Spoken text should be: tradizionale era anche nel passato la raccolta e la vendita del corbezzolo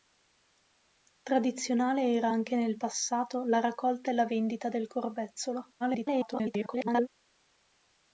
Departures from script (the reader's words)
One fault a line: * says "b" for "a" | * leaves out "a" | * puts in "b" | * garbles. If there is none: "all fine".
* garbles